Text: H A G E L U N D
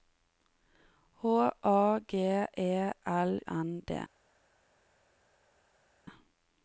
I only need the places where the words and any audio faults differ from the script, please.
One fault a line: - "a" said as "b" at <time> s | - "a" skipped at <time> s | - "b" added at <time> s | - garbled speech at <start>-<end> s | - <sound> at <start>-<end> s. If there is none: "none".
- "U" skipped at 3.4 s